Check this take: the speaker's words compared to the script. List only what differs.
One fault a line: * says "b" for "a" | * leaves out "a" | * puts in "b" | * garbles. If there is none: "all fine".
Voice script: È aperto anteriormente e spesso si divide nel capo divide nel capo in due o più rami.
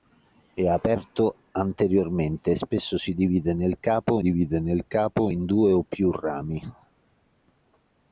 all fine